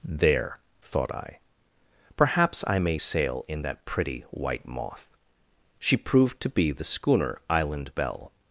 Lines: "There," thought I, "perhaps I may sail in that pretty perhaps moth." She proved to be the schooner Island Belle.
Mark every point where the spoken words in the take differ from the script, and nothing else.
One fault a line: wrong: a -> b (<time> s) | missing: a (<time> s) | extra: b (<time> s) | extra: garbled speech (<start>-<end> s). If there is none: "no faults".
wrong: perhaps -> white (4.3 s)